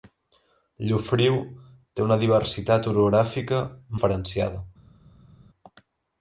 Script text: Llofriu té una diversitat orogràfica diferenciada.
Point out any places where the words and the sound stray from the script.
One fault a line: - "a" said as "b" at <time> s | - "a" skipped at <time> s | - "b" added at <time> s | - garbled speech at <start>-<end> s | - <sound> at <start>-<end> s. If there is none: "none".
none